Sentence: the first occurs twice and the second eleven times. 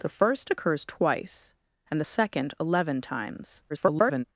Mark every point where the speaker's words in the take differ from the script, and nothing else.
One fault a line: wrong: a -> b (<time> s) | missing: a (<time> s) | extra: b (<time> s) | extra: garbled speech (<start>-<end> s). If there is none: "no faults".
extra: garbled speech (3.7-4.2 s)